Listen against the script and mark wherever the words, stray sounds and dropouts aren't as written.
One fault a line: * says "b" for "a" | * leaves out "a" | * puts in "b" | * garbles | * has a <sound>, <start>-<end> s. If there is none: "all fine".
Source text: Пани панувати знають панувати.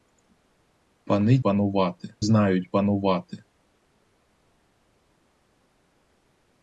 all fine